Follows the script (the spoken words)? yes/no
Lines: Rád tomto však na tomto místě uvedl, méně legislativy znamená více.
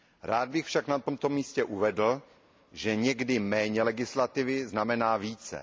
no